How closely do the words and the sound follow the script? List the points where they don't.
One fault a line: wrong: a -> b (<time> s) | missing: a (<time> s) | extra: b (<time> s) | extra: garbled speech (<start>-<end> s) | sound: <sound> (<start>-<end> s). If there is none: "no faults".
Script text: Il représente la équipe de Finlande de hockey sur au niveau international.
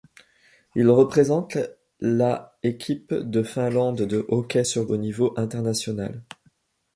no faults